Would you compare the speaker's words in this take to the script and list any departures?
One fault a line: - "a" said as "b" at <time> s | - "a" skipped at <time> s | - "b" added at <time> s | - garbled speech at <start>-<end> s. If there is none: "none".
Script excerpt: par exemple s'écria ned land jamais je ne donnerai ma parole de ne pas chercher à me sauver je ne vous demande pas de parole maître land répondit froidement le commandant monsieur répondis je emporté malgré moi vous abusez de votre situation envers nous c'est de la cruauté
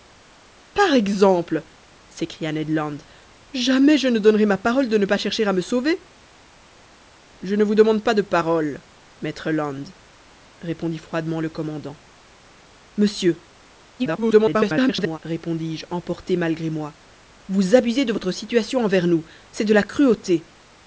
- garbled speech at 14.0-15.2 s